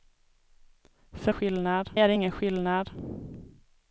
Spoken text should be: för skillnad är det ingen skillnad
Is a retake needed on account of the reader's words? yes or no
no